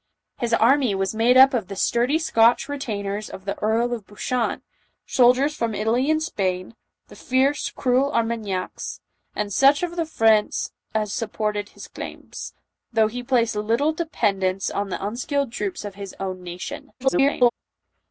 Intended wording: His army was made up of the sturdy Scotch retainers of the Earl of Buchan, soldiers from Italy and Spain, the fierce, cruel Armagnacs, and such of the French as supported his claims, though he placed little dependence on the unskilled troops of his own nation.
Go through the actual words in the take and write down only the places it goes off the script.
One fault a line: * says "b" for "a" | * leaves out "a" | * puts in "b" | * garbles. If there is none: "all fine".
* garbles